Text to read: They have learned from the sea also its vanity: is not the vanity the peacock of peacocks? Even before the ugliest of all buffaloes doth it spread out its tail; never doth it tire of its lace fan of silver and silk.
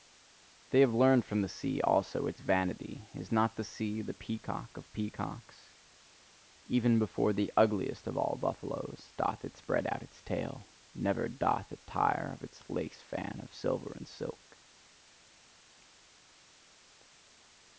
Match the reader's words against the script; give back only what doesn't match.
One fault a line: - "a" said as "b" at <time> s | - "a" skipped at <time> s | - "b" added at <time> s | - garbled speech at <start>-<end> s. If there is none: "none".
- "vanity" said as "sea" at 3.7 s